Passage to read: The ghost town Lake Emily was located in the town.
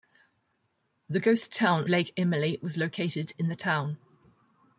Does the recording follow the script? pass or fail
pass